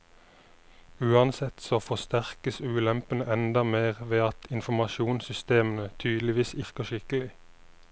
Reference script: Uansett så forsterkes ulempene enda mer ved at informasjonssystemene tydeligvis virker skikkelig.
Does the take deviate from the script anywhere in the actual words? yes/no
no